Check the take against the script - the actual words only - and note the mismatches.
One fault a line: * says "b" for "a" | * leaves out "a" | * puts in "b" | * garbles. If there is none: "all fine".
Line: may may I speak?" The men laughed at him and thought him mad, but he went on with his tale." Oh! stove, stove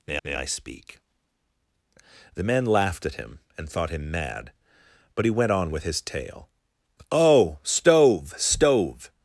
all fine